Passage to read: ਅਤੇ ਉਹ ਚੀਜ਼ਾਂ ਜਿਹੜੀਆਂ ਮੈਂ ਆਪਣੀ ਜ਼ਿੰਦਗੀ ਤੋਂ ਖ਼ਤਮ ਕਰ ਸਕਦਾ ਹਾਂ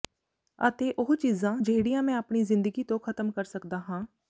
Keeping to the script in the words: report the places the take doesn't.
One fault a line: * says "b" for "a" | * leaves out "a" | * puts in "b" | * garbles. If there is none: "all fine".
all fine